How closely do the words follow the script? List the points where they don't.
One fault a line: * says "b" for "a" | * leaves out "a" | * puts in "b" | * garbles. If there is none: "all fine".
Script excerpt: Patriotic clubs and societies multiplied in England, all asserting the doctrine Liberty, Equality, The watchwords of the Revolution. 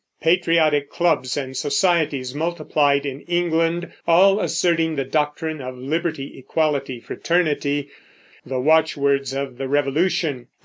* puts in "of"
* puts in "Fraternity"